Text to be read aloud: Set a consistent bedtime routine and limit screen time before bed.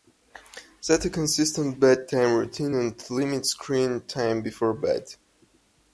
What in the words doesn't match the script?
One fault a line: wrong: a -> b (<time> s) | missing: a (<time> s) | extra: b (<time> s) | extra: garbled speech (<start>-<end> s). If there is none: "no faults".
no faults